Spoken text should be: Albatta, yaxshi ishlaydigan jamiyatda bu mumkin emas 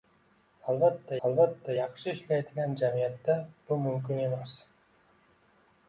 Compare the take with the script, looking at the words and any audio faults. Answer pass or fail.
fail